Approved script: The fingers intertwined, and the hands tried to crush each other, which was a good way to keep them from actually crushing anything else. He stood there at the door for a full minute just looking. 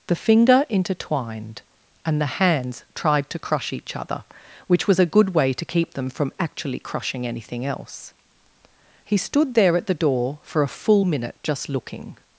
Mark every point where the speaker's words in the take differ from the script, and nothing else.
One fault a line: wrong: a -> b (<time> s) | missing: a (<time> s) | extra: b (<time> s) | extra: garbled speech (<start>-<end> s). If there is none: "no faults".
wrong: fingers -> finger (0.1 s)